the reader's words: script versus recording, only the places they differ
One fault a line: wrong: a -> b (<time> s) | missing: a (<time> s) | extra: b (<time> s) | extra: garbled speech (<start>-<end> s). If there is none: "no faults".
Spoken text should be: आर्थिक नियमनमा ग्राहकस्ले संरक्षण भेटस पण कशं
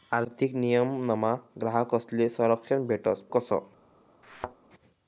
missing: पण (3.2 s)